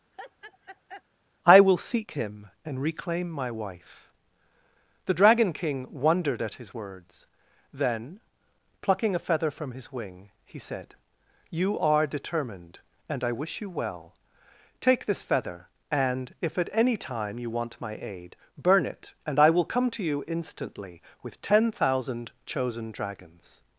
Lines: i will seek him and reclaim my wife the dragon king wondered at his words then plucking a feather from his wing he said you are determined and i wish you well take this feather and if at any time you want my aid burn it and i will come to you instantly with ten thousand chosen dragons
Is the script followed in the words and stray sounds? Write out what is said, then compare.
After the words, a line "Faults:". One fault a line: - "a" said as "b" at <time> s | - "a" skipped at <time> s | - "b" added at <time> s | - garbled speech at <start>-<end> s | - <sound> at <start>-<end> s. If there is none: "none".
i will seek him and reclaim my wife the dragon king wondered at his words then plucking a feather from his wing he said you are determined and i wish you well take this feather and if at any time you want my aid burn it and i will come to you instantly with ten thousand chosen dragons
Faults:
- laugh at 0.1-1.0 s